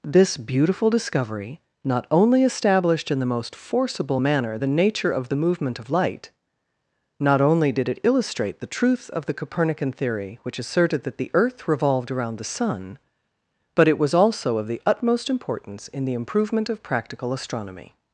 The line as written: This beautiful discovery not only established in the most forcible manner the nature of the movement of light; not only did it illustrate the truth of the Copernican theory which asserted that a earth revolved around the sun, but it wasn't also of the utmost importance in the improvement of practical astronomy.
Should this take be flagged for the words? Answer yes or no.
yes